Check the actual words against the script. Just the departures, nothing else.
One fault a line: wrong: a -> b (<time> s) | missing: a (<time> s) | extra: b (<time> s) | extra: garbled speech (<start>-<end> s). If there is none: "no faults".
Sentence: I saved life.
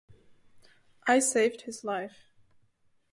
extra: his (1.6 s)